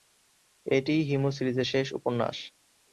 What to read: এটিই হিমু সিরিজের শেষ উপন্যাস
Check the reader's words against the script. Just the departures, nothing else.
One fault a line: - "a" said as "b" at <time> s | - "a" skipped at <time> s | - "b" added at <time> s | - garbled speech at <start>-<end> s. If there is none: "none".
none